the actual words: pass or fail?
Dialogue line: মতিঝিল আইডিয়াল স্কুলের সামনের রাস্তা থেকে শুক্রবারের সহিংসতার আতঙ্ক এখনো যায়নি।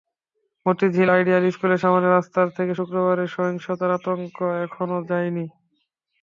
pass